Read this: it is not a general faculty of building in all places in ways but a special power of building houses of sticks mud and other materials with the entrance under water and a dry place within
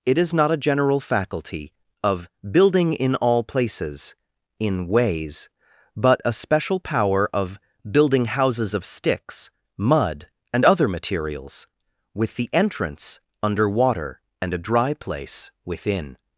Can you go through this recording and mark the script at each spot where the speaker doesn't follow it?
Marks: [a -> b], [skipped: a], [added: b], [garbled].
it is not a general faculty of building in all places in ways but a special power of building houses of sticks mud and other materials with the entrance under water and a dry place within